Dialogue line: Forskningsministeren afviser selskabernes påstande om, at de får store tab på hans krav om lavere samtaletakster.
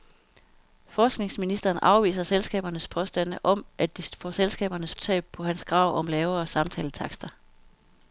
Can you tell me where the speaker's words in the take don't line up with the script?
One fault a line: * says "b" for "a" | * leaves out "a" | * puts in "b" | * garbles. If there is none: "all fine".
* says "selskabernes" for "store"